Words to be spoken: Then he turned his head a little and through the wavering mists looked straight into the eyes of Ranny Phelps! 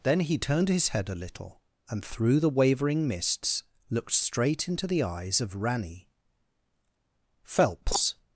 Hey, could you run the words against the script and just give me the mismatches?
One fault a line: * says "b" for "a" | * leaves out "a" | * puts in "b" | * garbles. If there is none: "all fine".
all fine